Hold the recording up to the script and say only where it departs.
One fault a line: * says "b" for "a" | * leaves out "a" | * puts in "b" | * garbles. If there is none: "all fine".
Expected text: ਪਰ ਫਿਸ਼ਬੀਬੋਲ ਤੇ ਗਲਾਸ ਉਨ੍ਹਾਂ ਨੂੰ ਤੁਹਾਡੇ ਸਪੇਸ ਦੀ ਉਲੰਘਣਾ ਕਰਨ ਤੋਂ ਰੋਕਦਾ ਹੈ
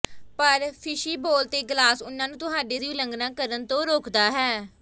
* leaves out "ਸਪੇਸ"